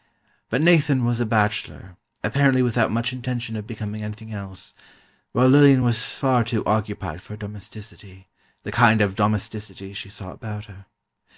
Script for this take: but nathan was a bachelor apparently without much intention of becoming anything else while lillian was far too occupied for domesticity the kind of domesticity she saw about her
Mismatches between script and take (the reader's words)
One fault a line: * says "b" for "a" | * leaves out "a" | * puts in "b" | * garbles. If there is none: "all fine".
all fine